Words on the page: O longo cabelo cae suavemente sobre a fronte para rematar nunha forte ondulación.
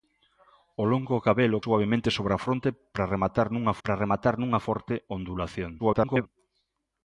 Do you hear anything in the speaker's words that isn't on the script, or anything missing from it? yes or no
yes